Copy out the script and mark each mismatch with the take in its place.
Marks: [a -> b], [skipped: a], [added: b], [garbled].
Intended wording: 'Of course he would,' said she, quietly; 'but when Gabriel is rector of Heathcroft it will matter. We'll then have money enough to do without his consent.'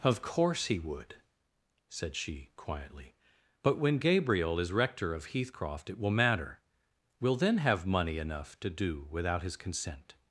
'Of course he would,' said she, quietly; 'but when Gabriel is rector of Heathcroft it will matter. We'll then have money enough to do without his consent.'